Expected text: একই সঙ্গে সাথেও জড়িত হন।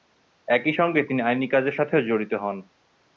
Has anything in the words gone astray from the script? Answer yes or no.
yes